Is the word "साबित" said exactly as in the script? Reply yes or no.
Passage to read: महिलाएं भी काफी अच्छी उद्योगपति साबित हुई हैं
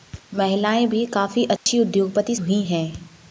no